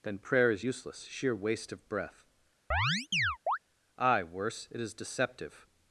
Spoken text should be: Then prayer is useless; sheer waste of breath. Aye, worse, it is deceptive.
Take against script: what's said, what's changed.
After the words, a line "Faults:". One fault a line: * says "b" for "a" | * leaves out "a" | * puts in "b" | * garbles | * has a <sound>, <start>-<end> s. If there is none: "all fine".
Then prayer is useless; sheer waste of breath. Aye, worse, it is deceptive.
Faults:
* has a chirp, 2.7-3.6 s